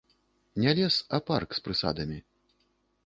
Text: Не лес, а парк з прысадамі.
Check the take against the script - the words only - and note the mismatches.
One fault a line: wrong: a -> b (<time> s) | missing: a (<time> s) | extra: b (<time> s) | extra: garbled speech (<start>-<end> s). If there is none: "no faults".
no faults